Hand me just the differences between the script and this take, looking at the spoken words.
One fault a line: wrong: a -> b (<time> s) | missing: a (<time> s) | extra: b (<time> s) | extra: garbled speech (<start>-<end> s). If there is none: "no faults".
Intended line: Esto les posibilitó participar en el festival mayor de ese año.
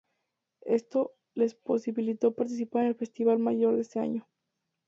no faults